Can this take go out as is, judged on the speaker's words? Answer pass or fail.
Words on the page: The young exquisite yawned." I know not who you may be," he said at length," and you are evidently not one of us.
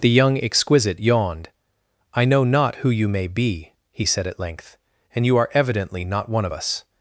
pass